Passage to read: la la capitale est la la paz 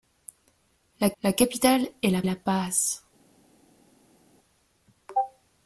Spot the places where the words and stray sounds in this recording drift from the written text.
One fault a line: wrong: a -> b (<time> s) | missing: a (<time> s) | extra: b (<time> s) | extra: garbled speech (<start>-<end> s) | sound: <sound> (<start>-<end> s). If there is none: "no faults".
no faults